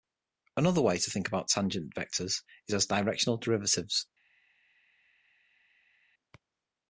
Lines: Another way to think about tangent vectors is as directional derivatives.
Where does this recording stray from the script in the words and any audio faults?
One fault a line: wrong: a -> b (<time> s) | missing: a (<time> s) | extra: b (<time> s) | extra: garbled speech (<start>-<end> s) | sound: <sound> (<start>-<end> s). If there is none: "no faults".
no faults